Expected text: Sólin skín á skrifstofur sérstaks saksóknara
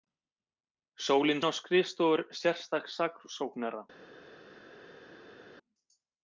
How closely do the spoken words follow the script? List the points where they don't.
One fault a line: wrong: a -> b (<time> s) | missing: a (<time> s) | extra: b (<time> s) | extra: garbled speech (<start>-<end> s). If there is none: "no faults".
missing: skín (1.4 s)